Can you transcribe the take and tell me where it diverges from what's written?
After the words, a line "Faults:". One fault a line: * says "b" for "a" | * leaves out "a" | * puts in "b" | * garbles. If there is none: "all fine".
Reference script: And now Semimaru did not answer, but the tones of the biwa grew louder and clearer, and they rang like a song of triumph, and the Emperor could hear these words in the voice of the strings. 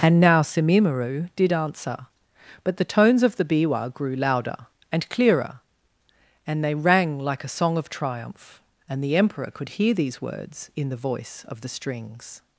And now Semimaru did answer, but the tones of the biwa grew louder and clearer, and they rang like a song of triumph, and the Emperor could hear these words in the voice of the strings.
Faults:
* leaves out "not"